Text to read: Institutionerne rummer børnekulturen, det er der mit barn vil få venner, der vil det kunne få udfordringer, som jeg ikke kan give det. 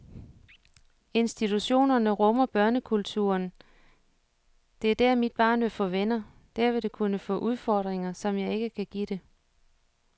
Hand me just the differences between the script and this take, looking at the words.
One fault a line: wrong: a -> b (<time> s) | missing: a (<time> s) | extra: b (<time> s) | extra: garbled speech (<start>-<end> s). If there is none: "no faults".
no faults